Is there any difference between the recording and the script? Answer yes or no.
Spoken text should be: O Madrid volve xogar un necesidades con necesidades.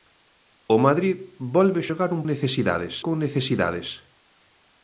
no